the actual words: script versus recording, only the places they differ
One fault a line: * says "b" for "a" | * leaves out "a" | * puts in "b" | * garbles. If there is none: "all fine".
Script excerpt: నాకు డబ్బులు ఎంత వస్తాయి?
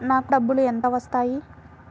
all fine